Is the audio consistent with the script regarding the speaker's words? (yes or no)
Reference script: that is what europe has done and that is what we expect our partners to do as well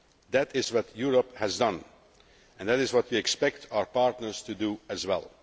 yes